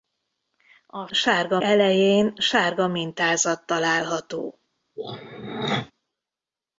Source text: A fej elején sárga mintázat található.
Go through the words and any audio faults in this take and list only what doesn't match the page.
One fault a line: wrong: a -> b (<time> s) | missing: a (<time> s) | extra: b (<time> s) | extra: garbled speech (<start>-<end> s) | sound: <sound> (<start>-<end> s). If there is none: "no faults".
wrong: fej -> sárga (1.1 s)
sound: throat clearing (5.0-5.9 s)